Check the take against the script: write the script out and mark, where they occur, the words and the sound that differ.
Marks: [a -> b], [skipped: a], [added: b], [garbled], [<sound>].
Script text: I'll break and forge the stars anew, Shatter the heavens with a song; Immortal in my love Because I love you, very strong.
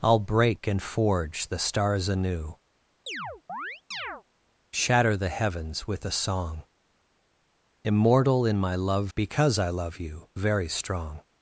I'll break and forge the stars anew, [chirp] Shatter the heavens with a song; Immortal in my love Because I love you, very strong.